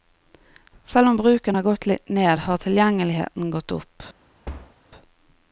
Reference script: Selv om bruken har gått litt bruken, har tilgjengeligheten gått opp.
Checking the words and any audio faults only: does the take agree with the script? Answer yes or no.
no